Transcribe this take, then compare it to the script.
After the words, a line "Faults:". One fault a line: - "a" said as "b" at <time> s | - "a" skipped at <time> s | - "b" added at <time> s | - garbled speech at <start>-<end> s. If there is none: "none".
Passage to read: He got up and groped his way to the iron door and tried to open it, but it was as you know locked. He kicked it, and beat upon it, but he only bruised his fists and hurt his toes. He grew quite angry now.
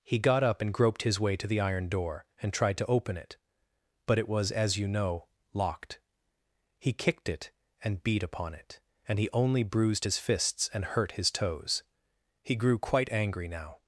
He got up and groped his way to the iron door and tried to open it, but it was as you know locked. He kicked it, and beat upon it, and he only bruised his fists and hurt his toes. He grew quite angry now.
Faults:
- "but" said as "and" at 9.1 s